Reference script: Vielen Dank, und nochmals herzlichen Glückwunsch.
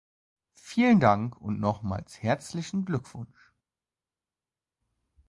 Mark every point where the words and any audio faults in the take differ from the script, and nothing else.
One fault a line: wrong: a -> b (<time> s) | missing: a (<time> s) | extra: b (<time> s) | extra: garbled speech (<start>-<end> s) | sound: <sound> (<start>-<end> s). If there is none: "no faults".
no faults